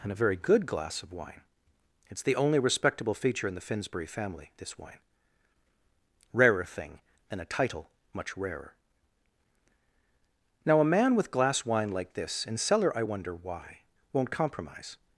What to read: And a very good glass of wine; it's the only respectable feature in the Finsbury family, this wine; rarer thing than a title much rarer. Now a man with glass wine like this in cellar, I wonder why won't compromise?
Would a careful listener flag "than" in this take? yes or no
no